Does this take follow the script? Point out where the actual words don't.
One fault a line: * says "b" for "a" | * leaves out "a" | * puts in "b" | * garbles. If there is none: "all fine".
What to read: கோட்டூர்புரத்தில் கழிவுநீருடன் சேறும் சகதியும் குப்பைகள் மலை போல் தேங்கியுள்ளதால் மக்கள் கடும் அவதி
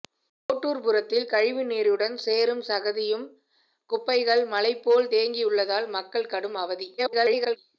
* garbles